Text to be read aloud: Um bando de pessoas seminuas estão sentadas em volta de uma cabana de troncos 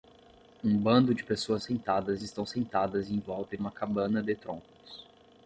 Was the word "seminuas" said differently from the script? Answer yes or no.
yes